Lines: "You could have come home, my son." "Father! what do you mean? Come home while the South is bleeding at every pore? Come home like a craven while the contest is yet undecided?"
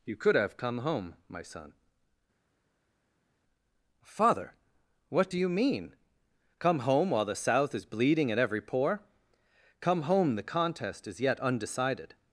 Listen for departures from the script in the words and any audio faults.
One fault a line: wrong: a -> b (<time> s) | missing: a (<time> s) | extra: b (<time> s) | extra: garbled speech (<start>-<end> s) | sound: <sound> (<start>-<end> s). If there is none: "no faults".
missing: like a craven while (10.4 s)